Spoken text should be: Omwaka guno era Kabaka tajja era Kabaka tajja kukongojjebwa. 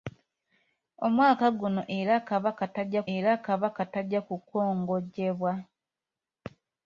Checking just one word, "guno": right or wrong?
right